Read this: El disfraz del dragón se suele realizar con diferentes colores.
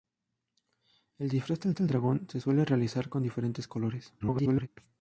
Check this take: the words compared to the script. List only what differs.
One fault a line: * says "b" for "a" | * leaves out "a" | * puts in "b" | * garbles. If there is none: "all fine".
* puts in "del"
* garbles